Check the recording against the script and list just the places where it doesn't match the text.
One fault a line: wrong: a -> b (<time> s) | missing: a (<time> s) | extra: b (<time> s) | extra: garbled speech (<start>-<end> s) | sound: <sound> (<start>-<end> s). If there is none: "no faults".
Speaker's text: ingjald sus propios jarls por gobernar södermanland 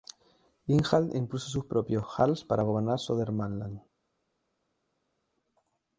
extra: impuso (1.1 s)
wrong: por -> para (2.4 s)